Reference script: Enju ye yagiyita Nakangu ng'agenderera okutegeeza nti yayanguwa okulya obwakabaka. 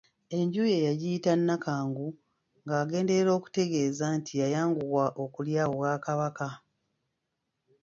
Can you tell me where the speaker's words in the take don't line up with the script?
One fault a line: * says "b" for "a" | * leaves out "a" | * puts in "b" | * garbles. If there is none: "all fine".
all fine